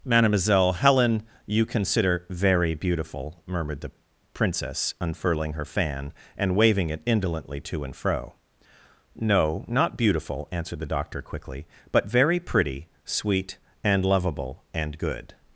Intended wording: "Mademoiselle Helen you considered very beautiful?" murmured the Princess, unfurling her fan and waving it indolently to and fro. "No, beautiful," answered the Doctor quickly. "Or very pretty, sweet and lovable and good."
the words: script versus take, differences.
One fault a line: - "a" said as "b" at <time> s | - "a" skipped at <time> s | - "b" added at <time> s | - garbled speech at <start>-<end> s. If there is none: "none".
- "considered" said as "consider" at 1.6 s
- "not" added at 9.7 s
- "Or" said as "But" at 11.9 s